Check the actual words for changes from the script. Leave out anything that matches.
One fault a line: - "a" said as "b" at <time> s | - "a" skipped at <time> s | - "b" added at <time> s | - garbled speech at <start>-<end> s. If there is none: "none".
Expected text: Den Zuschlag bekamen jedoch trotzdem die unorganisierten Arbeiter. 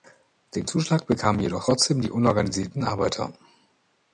none